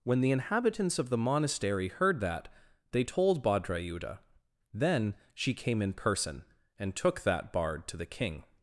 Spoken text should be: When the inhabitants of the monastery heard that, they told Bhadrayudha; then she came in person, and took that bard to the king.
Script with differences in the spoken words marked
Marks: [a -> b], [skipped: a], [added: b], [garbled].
When the inhabitants of the monastery heard that, they told Bhadrayudha; then she came in person, and took that bard to the king.